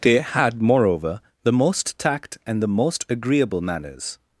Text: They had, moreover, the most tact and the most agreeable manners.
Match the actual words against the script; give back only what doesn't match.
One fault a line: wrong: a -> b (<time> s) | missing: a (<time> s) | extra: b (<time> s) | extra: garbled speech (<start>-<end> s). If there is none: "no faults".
no faults